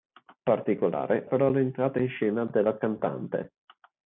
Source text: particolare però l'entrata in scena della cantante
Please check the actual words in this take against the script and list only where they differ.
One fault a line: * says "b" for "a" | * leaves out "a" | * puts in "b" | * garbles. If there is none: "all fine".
all fine